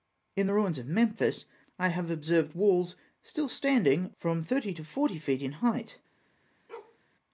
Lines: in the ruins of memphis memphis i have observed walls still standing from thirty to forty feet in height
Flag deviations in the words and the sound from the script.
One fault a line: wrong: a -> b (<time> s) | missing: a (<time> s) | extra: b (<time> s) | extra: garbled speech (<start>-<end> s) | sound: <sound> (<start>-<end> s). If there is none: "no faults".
missing: memphis (1.4 s)
sound: bark (6.7-7.0 s)